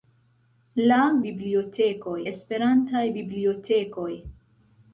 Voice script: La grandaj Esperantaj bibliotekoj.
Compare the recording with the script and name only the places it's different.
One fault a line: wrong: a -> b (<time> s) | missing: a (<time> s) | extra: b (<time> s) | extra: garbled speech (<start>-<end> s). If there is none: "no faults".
wrong: grandaj -> bibliotekoj (1.2 s)